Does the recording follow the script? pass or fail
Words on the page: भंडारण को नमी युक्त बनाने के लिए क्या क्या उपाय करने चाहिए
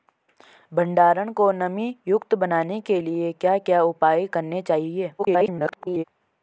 fail